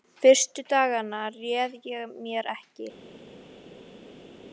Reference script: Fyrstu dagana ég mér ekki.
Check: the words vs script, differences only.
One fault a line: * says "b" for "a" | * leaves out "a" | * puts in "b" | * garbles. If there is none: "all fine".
* puts in "réð"